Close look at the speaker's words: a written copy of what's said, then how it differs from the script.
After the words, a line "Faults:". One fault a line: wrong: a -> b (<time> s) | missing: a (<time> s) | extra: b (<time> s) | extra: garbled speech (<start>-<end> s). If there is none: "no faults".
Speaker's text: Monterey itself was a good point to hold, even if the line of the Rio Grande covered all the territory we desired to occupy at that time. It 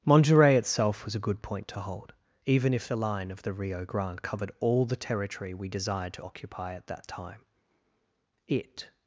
Monterey itself was a good point to hold, even if the line of the Rio Grande covered all the territory we desired to occupy at that time. It
Faults:
no faults